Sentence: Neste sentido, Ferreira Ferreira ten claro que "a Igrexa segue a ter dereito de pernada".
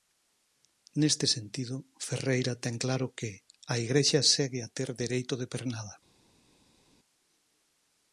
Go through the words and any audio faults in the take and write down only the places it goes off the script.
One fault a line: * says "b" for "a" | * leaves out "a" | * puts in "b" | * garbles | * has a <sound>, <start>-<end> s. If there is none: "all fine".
* leaves out "Ferreira"